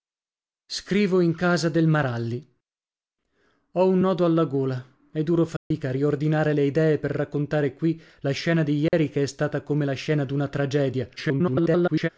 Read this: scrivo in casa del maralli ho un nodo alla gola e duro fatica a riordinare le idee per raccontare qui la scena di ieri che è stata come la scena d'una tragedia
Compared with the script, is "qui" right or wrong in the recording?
right